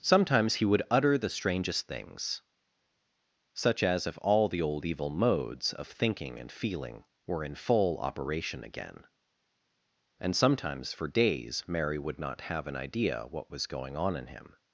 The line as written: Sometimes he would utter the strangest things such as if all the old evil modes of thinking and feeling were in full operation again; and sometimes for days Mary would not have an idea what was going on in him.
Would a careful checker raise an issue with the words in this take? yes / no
no